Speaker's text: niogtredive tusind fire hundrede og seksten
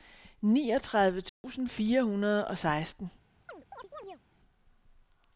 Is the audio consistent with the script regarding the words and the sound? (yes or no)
no